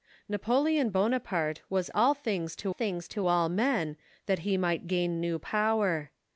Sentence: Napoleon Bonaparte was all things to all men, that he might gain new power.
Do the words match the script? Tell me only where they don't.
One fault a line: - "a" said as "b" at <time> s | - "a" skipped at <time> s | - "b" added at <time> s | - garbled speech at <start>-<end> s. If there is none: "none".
- "things to" added at 2.7 s